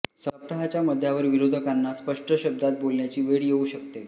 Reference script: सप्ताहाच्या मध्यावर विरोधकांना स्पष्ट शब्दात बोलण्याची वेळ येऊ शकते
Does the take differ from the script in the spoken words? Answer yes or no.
no